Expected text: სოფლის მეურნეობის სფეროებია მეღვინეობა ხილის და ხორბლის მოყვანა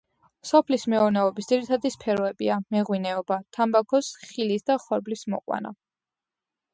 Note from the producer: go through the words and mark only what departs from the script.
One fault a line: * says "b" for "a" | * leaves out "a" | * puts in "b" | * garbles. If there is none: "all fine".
* puts in "ძირითადი"
* puts in "თამბაქოს"